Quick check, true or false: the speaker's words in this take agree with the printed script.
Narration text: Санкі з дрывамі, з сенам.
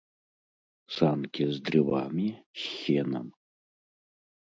true